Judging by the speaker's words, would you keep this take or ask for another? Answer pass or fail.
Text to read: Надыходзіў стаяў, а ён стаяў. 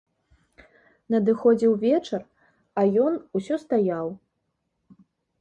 fail